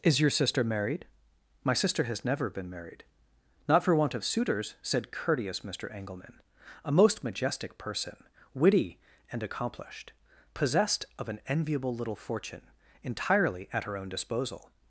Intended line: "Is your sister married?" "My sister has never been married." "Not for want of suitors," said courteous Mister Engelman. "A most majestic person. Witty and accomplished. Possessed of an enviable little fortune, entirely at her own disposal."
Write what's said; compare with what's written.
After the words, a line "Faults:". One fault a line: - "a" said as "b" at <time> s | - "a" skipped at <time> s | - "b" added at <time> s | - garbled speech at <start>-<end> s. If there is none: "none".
"Is your sister married?" "My sister has never been married." "Not for want of suitors," said courteous Mister Engelman. "A most majestic person. Witty and accomplished. Possessed of an enviable little fortune, entirely at her own disposal."
Faults:
none